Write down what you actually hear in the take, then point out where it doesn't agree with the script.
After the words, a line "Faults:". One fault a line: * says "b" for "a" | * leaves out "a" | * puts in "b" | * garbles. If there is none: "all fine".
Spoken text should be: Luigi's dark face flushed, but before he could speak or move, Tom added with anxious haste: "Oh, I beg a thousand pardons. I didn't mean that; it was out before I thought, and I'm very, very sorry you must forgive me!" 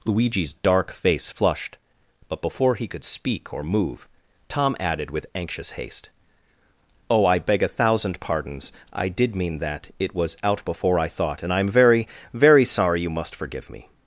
Luigi's dark face flushed, but before he could speak or move, Tom added with anxious haste: "Oh, I beg a thousand pardons. I did mean that; it was out before I thought, and I'm very, very sorry you must forgive me!"
Faults:
* says "did" for "didn't"